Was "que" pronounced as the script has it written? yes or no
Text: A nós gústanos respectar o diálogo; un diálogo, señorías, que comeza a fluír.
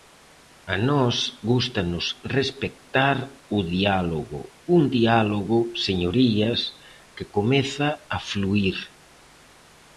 yes